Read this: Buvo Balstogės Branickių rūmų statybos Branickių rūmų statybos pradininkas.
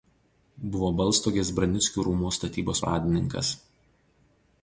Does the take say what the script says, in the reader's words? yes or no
no